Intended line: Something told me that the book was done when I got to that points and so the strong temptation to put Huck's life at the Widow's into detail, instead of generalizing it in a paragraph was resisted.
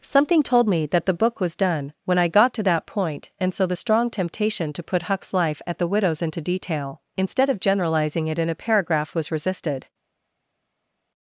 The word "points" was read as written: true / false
false